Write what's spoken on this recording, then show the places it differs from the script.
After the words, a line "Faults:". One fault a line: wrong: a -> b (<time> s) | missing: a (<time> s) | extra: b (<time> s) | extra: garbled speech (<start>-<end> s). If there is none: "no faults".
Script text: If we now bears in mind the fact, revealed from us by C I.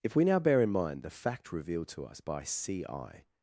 If we now bear in mind the fact, revealed to us by C I.
Faults:
wrong: bears -> bear (0.4 s)
wrong: from -> to (1.9 s)